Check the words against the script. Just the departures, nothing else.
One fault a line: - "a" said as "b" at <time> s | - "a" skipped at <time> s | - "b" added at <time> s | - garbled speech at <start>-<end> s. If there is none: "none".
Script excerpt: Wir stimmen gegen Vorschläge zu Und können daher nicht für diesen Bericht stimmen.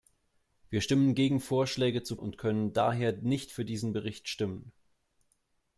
none